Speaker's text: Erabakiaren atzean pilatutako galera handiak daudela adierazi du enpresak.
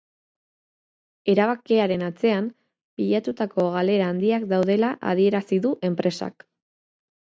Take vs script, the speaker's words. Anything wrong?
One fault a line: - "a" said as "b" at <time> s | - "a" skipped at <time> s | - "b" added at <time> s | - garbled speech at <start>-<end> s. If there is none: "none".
none